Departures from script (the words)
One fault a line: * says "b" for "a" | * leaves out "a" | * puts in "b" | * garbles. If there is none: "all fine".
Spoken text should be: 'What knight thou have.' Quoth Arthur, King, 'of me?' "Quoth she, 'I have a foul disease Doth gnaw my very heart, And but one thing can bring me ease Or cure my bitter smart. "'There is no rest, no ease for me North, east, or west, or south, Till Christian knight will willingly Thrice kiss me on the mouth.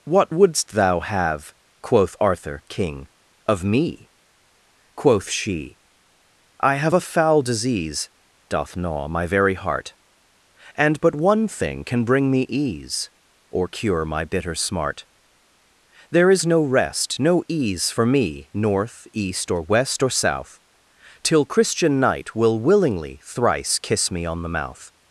* says "wouldst" for "knight"